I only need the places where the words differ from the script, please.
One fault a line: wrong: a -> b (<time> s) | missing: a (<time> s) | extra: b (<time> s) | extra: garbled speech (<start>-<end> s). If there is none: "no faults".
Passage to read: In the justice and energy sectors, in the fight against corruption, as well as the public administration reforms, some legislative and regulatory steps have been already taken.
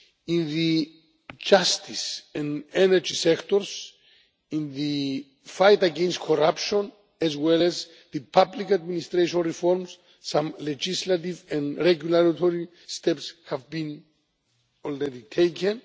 no faults